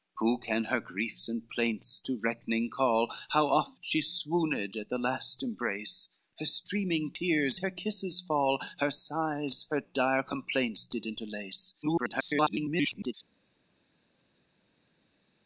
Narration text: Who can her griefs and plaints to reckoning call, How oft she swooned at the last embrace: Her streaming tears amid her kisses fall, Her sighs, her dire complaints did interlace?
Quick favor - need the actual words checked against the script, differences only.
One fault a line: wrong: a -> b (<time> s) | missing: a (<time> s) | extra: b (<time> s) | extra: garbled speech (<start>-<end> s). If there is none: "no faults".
missing: amid (7.6 s)
extra: garbled speech (11.8-13.1 s)